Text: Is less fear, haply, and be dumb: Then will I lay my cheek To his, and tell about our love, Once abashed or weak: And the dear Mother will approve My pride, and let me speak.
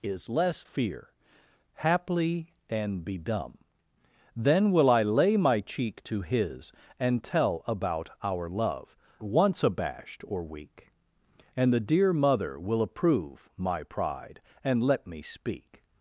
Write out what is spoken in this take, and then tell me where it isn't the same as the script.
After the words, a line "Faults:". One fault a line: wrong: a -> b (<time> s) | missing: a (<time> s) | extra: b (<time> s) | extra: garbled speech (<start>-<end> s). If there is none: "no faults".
Is less fear, haply, and be dumb: Then will I lay my cheek To his, and tell about our love, Once abashed or weak: And the dear Mother will approve My pride, and let me speak.
Faults:
no faults